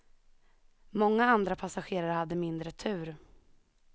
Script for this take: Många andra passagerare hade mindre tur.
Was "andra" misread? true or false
false